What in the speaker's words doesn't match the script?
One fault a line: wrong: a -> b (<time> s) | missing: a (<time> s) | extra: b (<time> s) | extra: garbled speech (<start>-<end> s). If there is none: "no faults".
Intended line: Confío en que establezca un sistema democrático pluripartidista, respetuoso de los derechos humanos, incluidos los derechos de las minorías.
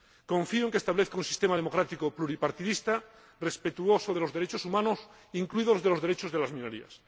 no faults